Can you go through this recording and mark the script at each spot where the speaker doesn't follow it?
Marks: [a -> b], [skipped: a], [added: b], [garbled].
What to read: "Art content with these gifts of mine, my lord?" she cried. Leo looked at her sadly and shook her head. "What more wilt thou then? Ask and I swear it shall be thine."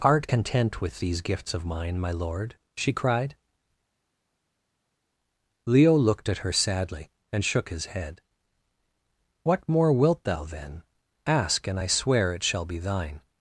"Art content with these gifts of mine, my lord?" she cried. Leo looked at her sadly and shook [her -> his] head. "What more wilt thou then? Ask and I swear it shall be thine."